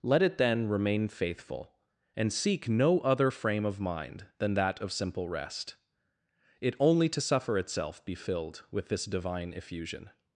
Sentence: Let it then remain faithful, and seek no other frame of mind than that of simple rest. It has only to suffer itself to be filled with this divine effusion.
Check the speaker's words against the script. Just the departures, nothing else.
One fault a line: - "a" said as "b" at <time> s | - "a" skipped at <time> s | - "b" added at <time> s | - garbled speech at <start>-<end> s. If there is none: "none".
- "has" skipped at 6.8 s
- "to" skipped at 8.0 s